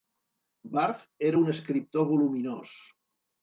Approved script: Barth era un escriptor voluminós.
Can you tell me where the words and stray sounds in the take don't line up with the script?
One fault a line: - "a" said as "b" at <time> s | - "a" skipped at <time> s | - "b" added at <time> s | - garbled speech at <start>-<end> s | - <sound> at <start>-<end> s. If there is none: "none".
none